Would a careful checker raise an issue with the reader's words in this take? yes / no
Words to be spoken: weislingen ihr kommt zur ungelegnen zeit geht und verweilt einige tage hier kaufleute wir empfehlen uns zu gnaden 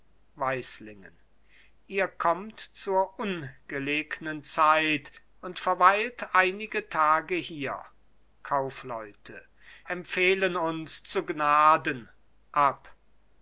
yes